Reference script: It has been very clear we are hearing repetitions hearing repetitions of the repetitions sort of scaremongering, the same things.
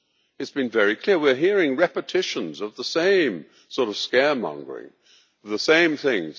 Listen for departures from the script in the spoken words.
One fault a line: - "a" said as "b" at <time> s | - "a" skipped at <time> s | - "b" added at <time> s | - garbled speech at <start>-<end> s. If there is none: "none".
- "hearing repetitions" skipped at 2.6 s
- "repetitions" said as "same" at 2.8 s